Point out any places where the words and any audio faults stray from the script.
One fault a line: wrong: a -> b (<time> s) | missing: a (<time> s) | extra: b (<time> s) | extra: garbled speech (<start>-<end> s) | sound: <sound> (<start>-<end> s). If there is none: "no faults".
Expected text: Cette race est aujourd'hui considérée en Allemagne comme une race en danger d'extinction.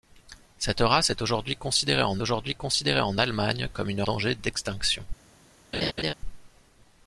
extra: aujourd'hui considérée en (2.2 s)
missing: race en (4.0 s)
sound: laugh (5.7-6.1 s)